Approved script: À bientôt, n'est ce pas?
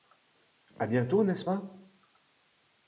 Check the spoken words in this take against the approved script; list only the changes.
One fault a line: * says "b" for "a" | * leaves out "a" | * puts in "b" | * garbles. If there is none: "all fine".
all fine